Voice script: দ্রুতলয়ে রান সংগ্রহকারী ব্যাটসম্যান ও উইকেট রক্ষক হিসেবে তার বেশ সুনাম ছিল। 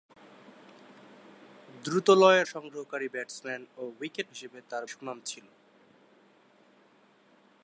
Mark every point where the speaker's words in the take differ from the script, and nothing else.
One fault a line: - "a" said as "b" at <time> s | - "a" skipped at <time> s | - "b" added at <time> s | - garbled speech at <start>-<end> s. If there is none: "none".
- "রান" skipped at 2.4 s
- "রক্ষক" skipped at 4.3 s
- "বেশ" skipped at 4.8 s